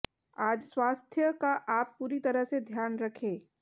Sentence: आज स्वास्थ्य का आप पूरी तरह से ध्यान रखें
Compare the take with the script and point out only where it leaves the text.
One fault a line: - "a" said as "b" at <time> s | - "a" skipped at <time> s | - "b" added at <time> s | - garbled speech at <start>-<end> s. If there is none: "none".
none